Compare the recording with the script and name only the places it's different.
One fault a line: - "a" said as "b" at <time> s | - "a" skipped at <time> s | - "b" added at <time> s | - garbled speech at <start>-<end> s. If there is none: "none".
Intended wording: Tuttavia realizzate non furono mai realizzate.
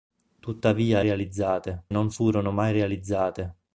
none